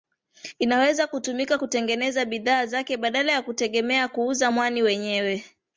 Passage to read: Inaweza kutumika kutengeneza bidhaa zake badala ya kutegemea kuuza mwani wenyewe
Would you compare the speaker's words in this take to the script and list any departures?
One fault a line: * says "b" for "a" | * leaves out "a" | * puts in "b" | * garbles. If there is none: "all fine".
all fine